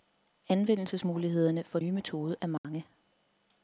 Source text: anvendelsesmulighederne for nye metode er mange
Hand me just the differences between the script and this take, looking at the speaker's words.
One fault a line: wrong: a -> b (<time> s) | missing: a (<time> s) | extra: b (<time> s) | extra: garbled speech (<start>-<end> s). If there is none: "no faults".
no faults